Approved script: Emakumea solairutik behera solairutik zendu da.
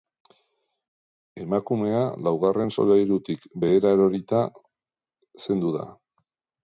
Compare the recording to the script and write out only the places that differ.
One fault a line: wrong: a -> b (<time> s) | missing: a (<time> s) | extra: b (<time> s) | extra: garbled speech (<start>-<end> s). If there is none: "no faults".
extra: laugarren (2.3 s)
wrong: solairutik -> erorita (4.0 s)